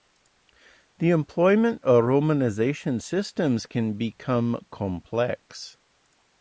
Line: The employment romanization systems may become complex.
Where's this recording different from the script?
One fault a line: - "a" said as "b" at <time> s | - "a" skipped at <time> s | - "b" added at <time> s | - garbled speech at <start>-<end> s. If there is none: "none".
- "of" added at 1.8 s
- "may" said as "can" at 3.7 s